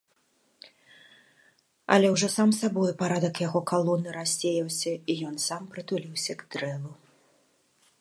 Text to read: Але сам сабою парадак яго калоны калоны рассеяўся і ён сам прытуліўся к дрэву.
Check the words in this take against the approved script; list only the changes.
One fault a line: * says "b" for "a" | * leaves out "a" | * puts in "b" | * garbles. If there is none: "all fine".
* puts in "ўжо"
* leaves out "калоны"